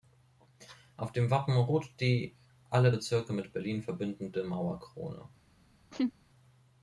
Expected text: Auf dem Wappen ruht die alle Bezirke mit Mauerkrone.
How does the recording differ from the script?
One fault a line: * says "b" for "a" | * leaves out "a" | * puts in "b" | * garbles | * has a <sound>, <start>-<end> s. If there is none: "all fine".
* puts in "Berlin verbindende"
* has a laugh, 5.9-6.1 s